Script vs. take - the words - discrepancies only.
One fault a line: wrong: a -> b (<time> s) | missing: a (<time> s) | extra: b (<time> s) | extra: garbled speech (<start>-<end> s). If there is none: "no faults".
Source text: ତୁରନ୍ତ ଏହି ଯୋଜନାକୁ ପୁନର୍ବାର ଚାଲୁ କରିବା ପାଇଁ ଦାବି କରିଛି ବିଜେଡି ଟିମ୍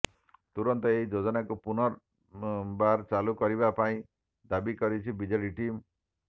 no faults